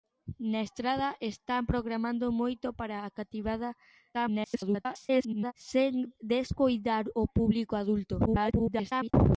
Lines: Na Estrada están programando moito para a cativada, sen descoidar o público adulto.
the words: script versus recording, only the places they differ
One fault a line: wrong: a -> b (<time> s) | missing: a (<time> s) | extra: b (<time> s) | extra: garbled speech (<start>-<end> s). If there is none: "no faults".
extra: garbled speech (4.1-5.5 s)
extra: garbled speech (8.3-9.1 s)